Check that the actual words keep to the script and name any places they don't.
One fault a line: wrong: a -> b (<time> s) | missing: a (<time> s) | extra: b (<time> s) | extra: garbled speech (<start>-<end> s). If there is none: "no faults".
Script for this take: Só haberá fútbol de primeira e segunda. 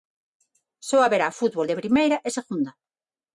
no faults